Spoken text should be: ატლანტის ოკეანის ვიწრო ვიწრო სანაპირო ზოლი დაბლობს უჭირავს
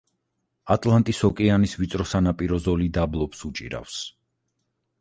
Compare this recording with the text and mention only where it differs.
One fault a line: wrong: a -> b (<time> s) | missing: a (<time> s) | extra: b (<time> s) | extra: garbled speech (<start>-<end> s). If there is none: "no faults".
missing: ვიწრო (2.1 s)